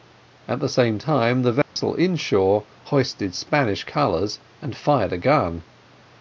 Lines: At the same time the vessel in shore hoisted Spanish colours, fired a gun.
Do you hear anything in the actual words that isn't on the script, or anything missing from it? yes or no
yes